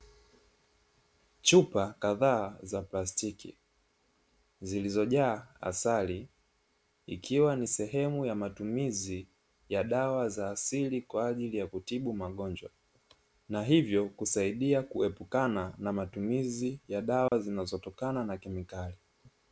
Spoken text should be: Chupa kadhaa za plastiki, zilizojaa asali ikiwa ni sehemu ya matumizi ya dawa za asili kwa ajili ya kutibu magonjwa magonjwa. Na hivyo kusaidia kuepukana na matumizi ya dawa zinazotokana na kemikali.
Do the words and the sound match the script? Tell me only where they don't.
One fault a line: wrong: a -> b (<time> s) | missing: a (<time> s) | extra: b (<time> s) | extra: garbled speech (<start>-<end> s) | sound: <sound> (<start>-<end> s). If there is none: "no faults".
missing: magonjwa (12.7 s)
sound: dropout (17.3-17.3 s)